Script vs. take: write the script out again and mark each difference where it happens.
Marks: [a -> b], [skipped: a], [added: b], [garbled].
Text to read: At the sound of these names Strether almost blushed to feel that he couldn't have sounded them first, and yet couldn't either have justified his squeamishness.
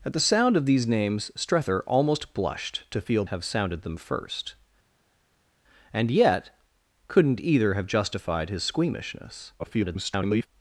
At the sound of these names Strether almost blushed to feel [skipped: that he couldn't] have sounded them first, and yet couldn't either have justified his squeamishness. [garbled]